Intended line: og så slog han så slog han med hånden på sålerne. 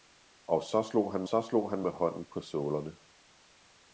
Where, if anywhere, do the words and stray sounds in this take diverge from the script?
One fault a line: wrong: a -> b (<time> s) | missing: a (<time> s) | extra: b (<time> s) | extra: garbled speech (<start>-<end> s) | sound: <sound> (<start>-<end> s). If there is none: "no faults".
no faults